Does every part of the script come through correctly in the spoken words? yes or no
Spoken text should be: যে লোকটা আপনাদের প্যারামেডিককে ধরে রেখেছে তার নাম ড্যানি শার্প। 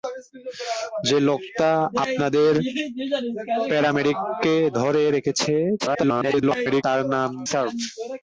no